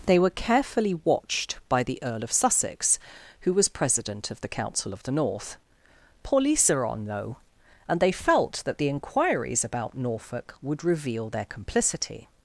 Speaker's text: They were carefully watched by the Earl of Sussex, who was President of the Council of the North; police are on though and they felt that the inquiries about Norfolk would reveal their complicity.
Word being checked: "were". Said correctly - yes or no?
yes